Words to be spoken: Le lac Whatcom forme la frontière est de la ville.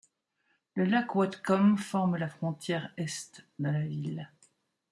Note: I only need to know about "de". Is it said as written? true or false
true